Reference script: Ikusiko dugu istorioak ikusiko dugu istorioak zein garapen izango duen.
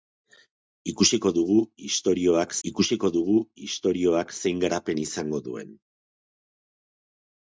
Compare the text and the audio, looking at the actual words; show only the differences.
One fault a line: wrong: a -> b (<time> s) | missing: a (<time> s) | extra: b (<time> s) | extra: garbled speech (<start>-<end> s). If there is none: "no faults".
no faults